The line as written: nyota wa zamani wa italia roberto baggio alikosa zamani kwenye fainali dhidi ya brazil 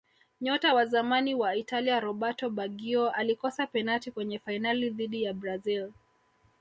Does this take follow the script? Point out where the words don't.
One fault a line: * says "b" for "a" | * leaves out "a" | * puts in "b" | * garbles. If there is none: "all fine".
* says "penati" for "zamani"